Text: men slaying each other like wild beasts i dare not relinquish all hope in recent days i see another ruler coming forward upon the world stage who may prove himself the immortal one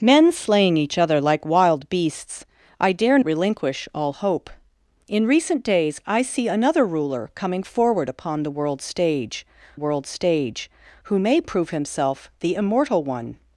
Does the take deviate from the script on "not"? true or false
true